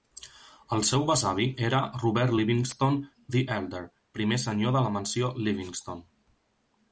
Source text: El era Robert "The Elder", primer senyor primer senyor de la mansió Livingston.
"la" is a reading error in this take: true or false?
false